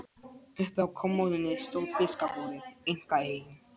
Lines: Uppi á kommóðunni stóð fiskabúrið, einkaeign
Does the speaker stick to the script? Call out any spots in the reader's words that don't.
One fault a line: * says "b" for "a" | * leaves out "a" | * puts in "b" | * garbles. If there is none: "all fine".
all fine